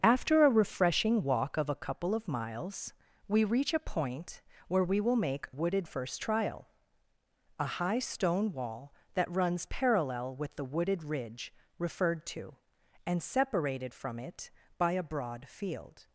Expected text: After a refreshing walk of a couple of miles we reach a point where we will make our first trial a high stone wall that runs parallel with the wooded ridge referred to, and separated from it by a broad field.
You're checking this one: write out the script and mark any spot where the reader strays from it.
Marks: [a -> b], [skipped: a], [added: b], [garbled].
After a refreshing walk of a couple of miles we reach a point where we will make [our -> wooded] first trial a high stone wall that runs parallel with the wooded ridge referred to, and separated from it by a broad field.